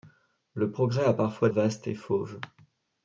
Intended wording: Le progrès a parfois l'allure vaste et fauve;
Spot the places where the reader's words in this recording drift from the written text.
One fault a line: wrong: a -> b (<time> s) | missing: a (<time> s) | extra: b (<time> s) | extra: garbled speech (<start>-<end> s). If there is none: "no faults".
missing: l'allure (1.5 s)